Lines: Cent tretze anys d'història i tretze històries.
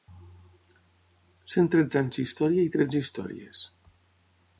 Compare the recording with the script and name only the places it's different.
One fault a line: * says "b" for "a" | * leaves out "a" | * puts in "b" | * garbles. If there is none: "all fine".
all fine